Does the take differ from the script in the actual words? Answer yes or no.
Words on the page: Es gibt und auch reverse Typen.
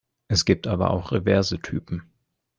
yes